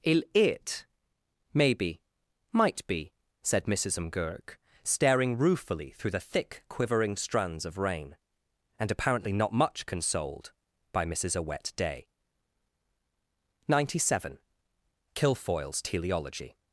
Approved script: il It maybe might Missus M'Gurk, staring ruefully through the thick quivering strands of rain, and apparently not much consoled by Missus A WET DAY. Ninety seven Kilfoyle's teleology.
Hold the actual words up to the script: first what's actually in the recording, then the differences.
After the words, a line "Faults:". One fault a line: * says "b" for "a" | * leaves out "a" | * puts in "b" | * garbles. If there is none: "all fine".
il It maybe might be," said Missus M'Gurk, staring ruefully through the thick quivering strands of rain, and apparently not much consoled by Missus A WET DAY. Ninety seven Kilfoyle's teleology.
Faults:
* puts in "be said"